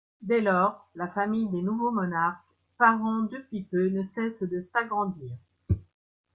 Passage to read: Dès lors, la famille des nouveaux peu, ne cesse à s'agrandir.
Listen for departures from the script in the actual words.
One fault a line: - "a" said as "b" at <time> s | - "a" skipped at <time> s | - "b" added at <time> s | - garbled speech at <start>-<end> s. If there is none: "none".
- "monarques parents depuis" added at 1.9 s
- "à" said as "de" at 4.4 s